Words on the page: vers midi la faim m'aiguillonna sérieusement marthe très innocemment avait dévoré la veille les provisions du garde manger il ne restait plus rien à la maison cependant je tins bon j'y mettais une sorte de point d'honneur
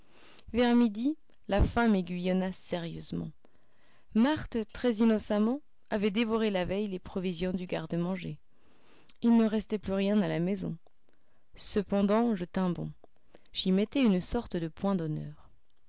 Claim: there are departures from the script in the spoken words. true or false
false